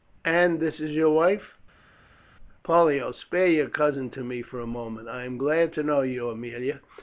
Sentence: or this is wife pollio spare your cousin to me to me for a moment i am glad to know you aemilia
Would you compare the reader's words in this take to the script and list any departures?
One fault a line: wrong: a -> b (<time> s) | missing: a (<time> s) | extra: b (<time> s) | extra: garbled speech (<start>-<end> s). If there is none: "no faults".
wrong: or -> and (0.2 s)
extra: your (0.9 s)
missing: to me (4.4 s)